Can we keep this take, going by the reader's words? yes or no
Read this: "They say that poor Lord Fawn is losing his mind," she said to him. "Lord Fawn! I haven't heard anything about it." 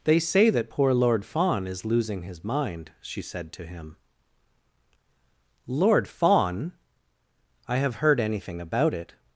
no